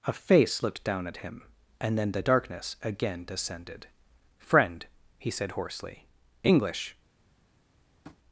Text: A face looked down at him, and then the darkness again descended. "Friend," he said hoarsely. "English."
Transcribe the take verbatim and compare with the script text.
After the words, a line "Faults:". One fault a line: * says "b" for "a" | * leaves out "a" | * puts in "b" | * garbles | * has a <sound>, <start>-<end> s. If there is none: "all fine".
A face looked down at him, and then the darkness again descended. "Friend," he said hoarsely. "English."
Faults:
* has a tap, 8.0-8.2 s